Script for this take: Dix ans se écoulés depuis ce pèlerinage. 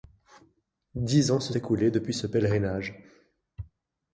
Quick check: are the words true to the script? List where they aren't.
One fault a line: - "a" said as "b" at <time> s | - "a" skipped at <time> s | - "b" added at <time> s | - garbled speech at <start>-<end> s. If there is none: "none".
none